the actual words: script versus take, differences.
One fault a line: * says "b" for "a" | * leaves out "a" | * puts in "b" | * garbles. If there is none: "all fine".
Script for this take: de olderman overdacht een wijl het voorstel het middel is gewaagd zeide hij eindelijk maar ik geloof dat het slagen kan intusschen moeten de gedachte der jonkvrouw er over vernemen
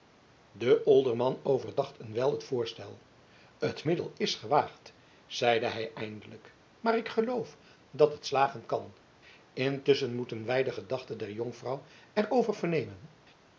* puts in "wij"